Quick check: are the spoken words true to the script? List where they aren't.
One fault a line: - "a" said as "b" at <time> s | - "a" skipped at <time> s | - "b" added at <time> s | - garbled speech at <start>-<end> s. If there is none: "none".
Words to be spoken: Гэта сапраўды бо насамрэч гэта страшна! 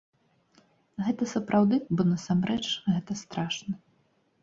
none